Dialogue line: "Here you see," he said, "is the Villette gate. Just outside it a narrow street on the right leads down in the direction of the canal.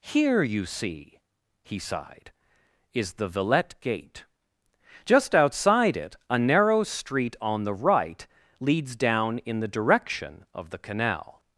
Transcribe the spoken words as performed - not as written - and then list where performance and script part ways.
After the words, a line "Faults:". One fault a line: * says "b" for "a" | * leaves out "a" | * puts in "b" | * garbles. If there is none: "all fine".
"Here you see," he sighed, "is the Villette gate. Just outside it a narrow street on the right leads down in the direction of the canal.
Faults:
* says "sighed" for "said"